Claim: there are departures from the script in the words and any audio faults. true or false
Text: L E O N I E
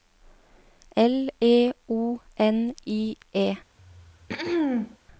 true